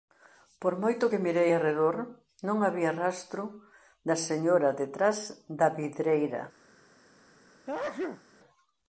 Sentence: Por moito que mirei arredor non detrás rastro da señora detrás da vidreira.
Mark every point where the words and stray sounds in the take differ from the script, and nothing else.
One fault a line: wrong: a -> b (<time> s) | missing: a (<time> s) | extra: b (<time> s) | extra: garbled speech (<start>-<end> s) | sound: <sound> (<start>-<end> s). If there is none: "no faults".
wrong: detrás -> había (2.7 s)
sound: sneeze (7.7-8.2 s)